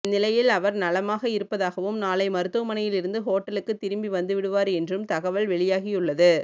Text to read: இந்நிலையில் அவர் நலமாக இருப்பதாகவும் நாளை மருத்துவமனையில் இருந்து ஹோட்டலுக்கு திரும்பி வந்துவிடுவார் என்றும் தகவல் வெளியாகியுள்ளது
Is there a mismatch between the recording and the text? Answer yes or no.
no